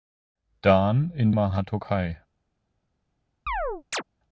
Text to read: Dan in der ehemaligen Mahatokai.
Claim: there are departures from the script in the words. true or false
true